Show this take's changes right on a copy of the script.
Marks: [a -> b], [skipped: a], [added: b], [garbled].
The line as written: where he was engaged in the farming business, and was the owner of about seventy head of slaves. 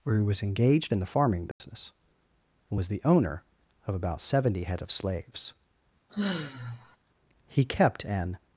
where he was engaged in the farming business, and was the owner of about seventy head of slaves. [added: He kept an]